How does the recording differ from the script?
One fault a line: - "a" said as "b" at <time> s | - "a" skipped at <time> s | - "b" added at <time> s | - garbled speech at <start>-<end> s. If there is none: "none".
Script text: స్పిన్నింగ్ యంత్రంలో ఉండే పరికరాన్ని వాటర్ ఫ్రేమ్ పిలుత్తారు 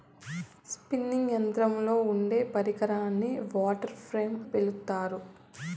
none